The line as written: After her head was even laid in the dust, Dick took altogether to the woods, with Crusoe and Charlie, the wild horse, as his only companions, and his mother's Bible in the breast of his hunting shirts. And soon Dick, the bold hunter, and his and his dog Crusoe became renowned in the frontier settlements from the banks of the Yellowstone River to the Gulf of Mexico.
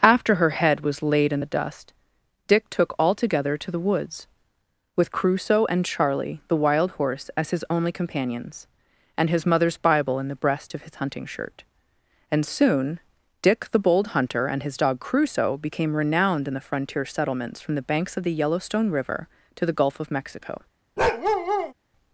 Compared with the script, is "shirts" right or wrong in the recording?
wrong